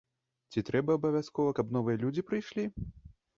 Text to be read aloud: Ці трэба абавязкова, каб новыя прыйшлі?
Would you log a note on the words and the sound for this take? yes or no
yes